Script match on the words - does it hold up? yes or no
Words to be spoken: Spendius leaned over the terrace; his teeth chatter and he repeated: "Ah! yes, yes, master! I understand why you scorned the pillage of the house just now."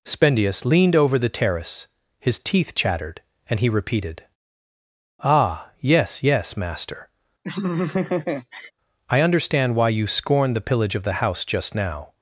no